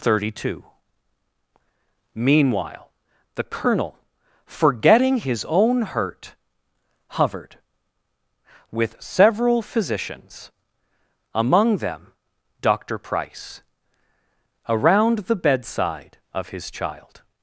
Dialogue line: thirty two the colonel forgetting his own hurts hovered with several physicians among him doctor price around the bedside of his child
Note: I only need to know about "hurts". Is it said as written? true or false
false